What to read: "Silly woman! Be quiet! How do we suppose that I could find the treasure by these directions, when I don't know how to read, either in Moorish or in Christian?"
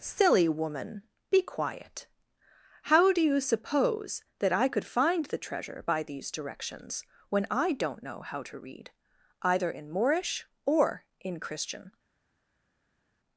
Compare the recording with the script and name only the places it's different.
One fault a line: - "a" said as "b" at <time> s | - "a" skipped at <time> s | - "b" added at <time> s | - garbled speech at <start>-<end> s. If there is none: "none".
- "we" said as "you" at 3.2 s